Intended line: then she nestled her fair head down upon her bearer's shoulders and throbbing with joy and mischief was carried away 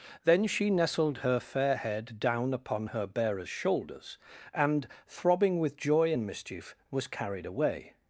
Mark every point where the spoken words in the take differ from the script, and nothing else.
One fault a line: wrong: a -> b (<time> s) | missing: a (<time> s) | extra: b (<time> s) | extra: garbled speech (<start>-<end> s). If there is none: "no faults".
no faults